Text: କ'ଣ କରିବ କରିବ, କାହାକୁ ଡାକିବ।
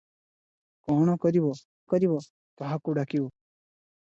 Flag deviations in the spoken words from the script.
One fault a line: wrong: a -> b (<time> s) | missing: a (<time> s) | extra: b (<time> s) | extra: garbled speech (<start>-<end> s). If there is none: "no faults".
no faults